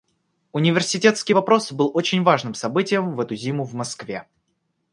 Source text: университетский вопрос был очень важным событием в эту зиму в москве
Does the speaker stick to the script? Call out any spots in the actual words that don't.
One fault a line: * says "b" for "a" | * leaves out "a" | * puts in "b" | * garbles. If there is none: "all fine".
all fine